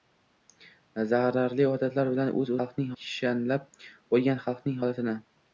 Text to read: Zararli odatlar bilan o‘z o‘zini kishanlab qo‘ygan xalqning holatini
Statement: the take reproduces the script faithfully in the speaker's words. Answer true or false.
false